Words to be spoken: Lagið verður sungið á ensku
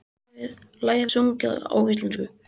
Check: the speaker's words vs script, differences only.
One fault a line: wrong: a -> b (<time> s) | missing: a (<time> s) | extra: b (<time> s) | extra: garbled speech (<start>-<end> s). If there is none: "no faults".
missing: verður (1.1 s)